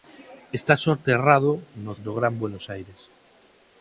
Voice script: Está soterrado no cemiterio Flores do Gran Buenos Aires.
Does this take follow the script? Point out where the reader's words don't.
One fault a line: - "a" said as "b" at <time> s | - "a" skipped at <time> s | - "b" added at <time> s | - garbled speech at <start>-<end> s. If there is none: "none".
- "cemiterio Flores" skipped at 1.9 s